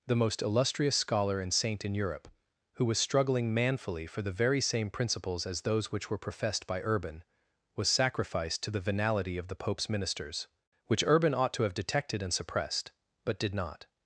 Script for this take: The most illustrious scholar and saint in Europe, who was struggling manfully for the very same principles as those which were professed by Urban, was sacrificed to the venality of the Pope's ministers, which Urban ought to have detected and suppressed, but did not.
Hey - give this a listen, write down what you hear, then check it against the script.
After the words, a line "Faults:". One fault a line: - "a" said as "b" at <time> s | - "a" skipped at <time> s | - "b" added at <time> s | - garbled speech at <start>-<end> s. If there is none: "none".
The most illustrious scholar and saint in Europe, who was struggling manfully for the very same principles as those which were professed by Urban, was sacrificed to the venality of the Pope's ministers, which Urban ought to have detected and suppressed, but did not.
Faults:
none